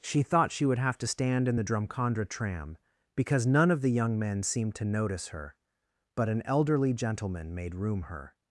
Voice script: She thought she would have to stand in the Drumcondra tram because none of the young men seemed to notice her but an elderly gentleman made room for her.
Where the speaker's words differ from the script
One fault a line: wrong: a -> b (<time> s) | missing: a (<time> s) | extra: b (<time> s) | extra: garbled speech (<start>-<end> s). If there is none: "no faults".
missing: for (8.0 s)